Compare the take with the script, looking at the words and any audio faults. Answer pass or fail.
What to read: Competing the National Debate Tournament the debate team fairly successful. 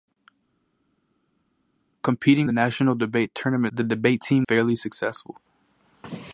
pass